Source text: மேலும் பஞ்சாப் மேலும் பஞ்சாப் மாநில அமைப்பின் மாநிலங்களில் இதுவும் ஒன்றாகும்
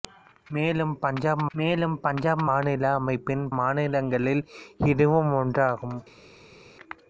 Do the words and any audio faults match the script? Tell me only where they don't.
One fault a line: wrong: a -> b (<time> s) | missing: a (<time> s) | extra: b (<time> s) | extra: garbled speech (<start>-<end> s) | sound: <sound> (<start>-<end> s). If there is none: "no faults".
no faults